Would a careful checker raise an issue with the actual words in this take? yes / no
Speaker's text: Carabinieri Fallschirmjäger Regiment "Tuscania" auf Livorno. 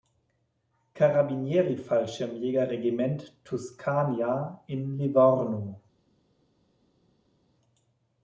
yes